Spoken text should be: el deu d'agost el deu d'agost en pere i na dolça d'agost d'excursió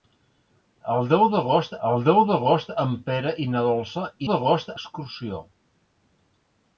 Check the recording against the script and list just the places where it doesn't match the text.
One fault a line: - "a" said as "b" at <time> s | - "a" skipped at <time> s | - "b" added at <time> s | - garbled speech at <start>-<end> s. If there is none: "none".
none